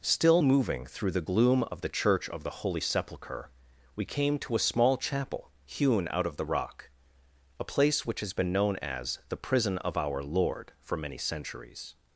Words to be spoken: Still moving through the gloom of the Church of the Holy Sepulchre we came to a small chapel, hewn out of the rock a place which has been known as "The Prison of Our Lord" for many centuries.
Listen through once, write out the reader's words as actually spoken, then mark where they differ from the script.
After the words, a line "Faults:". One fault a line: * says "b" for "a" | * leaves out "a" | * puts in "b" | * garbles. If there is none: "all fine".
Still moving through the gloom of the Church of the Holy Sepulchre we came to a small chapel, hewn out of the rock a place which has been known as "The Prison of Our Lord" for many centuries.
Faults:
all fine